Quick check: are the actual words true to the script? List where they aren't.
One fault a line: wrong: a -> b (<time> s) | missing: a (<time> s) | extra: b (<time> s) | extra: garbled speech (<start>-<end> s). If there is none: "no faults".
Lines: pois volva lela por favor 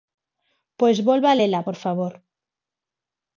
no faults